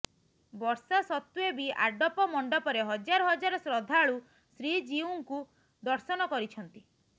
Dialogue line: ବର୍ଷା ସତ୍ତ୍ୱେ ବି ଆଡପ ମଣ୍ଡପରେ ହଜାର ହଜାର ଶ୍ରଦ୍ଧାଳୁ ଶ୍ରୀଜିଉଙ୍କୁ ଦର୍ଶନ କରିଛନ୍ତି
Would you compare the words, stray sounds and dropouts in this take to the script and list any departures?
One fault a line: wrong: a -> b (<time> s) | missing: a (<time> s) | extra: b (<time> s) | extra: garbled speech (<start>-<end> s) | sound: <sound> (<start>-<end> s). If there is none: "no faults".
no faults